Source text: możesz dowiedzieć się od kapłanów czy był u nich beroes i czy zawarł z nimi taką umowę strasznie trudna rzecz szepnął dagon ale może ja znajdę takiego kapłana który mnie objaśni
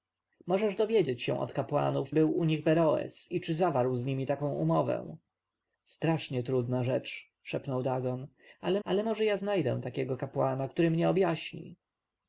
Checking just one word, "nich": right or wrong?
right